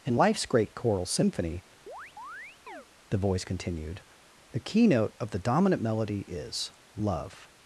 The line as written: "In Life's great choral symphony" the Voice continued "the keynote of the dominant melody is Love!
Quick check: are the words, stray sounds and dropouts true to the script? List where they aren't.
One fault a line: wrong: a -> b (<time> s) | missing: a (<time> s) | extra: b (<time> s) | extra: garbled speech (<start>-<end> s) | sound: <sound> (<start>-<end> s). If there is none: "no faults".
sound: chirp (1.9-2.9 s)